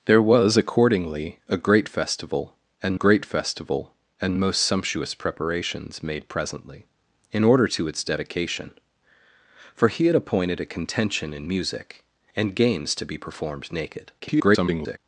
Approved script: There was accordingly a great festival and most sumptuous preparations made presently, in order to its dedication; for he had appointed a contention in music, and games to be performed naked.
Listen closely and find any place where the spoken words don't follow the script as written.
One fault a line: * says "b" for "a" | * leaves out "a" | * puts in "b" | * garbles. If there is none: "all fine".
* puts in "great festival and"
* garbles